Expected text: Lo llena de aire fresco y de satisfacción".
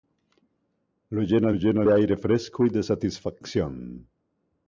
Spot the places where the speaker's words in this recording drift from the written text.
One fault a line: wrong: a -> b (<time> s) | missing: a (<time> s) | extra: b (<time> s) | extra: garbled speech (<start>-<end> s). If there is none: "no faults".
extra: llena (1.5 s)